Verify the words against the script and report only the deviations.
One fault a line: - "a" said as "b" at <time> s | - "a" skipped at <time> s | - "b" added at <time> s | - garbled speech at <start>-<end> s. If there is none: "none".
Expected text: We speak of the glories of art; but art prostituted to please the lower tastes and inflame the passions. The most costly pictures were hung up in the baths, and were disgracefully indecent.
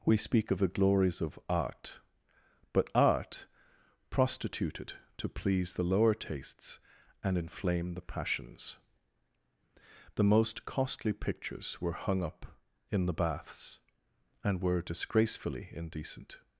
none